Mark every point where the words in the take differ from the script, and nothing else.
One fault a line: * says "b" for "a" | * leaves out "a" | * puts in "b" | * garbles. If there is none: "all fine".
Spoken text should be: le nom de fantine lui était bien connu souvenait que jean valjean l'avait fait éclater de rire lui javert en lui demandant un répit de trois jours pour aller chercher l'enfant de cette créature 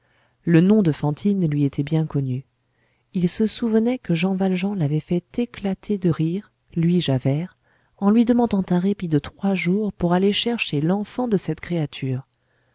* puts in "il se"